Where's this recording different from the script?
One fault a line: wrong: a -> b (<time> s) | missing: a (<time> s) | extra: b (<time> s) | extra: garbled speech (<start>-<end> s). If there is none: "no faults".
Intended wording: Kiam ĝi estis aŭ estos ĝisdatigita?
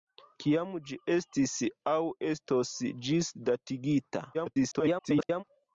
extra: garbled speech (4.3-5.4 s)